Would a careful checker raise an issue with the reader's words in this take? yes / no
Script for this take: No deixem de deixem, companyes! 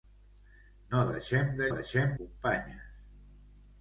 no